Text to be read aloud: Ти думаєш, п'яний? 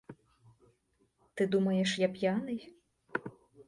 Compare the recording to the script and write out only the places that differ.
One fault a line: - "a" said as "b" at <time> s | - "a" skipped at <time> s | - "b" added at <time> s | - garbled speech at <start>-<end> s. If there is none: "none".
- "я" added at 2.0 s